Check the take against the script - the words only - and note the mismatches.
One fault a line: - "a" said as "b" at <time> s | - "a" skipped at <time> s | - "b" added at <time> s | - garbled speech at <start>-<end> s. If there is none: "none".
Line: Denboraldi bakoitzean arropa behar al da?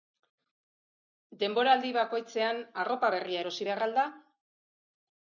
- "berria erosi" added at 3.1 s